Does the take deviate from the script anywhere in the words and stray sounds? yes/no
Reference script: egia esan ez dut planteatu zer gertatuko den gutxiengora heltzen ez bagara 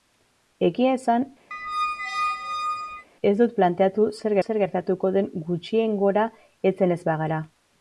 yes